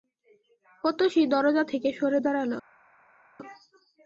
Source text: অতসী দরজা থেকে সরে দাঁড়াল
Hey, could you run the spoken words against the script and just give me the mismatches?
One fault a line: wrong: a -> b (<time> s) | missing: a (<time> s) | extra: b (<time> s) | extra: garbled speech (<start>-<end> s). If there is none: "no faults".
no faults